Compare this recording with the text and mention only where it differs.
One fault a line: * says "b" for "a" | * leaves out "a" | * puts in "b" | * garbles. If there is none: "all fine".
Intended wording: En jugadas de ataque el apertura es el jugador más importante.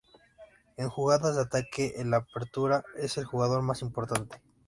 all fine